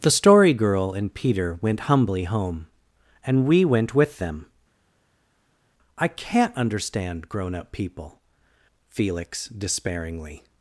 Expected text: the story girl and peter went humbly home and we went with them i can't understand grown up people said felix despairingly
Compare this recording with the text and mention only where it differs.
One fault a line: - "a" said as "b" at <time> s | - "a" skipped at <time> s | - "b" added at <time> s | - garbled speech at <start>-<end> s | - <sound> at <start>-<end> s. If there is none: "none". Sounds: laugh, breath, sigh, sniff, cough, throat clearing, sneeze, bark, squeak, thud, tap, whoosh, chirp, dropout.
- "said" skipped at 8.2 s